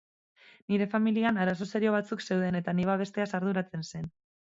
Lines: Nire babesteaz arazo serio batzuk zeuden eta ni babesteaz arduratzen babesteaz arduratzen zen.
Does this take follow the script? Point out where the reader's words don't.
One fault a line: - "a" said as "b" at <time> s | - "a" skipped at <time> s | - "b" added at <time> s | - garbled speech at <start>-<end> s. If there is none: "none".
- "babesteaz" said as "familian" at 0.9 s
- "babesteaz arduratzen" skipped at 3.9 s